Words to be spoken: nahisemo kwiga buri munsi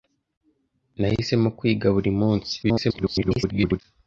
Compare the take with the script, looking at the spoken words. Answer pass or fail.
fail